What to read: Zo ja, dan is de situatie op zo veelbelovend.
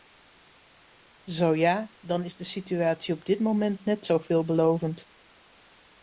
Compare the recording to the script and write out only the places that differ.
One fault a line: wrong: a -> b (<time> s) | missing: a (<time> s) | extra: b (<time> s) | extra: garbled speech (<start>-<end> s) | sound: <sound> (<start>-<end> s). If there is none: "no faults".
extra: dit moment net (3.2 s)